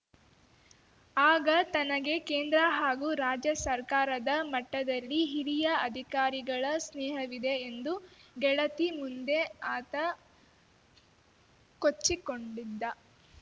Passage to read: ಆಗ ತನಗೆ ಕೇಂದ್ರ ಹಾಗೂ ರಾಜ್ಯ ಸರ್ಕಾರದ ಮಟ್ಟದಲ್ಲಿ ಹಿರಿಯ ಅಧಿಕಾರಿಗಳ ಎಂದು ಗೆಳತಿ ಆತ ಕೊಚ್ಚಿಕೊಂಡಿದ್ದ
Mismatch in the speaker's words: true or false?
true